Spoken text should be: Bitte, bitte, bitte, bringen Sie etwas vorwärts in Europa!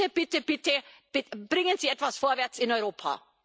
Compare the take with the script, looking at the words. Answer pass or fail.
pass